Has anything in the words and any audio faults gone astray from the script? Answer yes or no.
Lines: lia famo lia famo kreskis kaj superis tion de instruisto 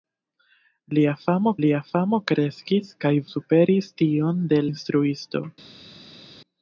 no